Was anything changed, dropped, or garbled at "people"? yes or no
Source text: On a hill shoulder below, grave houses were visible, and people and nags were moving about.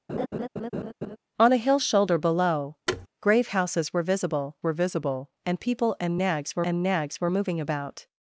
no